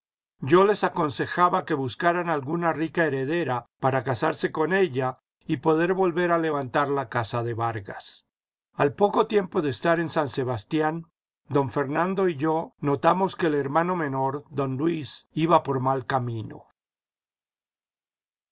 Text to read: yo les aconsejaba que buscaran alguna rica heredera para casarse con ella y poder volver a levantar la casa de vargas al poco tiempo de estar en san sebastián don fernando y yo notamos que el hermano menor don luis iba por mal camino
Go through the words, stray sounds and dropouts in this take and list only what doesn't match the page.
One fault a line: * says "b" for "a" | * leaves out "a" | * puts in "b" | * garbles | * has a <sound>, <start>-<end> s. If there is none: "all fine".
all fine